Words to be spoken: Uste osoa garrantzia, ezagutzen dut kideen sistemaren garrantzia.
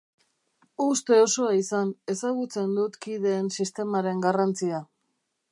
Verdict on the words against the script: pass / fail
fail